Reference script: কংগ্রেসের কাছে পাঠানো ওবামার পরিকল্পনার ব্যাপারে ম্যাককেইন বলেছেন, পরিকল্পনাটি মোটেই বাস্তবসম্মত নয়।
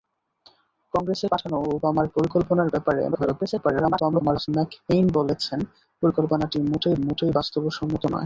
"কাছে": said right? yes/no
no